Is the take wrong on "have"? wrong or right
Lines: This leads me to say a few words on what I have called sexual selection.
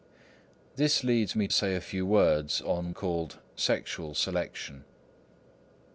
wrong